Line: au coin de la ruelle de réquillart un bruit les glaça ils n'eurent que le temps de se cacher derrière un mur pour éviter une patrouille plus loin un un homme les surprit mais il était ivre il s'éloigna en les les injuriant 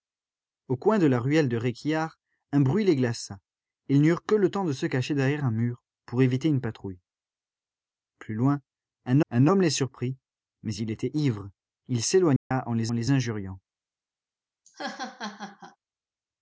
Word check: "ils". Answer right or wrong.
right